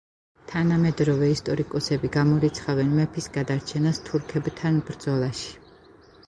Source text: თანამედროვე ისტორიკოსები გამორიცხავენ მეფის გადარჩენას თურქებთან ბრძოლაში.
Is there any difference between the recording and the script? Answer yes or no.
no